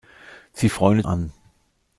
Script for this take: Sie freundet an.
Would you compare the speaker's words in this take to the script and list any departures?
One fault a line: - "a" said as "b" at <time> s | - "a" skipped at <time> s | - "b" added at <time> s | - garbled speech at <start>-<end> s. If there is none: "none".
none